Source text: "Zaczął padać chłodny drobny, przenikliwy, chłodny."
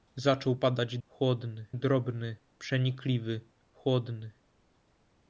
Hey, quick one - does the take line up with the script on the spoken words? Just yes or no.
yes